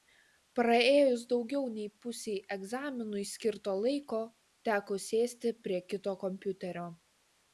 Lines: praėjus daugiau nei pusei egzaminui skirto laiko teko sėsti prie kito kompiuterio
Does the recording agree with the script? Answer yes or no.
yes